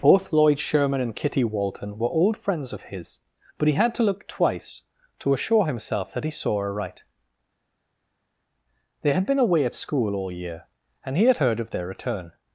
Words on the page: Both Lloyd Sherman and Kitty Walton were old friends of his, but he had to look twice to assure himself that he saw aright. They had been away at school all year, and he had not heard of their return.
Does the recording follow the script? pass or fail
fail